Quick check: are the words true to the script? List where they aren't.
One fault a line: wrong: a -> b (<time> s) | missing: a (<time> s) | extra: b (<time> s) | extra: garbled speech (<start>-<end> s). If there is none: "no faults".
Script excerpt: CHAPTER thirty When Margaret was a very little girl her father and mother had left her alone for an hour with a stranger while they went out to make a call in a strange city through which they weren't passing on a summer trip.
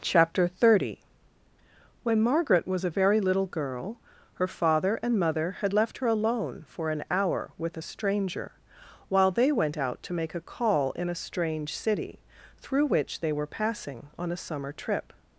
wrong: weren't -> were (13.3 s)